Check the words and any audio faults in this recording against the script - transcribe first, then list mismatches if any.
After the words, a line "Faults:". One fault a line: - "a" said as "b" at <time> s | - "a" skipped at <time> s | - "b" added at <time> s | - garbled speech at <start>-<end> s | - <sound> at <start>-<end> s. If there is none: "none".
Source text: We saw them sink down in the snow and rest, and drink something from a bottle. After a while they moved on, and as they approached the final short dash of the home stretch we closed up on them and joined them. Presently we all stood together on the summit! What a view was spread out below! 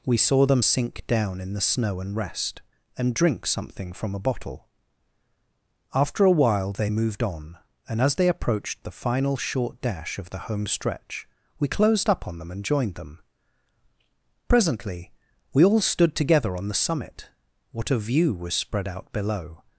We saw them sink down in the snow and rest, and drink something from a bottle. After a while they moved on, and as they approached the final short dash of the home stretch we closed up on them and joined them. Presently we all stood together on the summit! What a view was spread out below!
Faults:
none